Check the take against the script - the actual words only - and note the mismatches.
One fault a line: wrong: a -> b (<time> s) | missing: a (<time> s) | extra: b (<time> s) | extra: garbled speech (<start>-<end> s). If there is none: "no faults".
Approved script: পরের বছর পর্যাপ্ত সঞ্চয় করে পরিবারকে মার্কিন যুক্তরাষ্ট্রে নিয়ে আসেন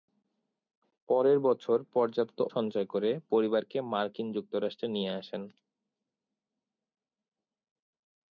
no faults